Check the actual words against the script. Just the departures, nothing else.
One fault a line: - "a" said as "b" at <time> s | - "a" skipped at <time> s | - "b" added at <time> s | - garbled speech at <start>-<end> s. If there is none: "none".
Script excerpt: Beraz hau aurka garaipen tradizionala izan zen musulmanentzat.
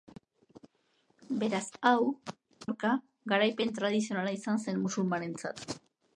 none